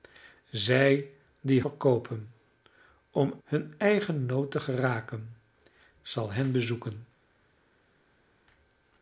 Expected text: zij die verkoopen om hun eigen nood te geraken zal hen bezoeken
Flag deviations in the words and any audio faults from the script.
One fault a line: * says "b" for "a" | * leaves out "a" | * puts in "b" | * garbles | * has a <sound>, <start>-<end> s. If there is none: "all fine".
all fine